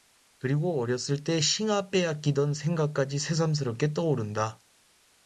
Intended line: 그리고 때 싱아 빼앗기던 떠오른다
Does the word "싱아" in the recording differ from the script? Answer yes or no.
no